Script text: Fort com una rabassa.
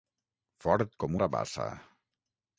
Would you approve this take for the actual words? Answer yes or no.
no